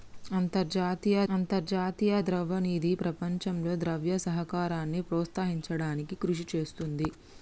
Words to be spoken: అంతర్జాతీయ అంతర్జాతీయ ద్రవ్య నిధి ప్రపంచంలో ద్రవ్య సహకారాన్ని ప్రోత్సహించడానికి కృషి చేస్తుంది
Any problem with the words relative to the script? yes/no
no